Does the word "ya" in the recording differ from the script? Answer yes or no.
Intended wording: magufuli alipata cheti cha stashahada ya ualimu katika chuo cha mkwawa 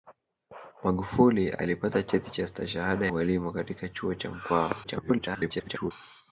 yes